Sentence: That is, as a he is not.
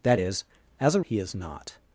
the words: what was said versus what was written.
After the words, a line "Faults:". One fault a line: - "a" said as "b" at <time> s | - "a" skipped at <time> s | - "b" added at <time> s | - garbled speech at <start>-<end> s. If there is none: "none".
That is, as a he is not.
Faults:
none